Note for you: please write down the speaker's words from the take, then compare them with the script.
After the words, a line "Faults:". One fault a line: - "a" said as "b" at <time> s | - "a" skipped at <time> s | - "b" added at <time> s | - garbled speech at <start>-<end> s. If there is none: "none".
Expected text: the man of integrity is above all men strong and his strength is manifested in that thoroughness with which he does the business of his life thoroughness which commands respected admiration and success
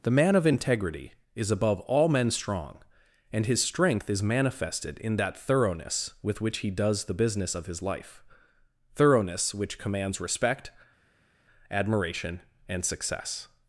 the man of integrity is above all men strong and his strength is manifested in that thoroughness with which he does the business of his life thoroughness which commands respect admiration and success
Faults:
- "respected" said as "respect" at 10.2 s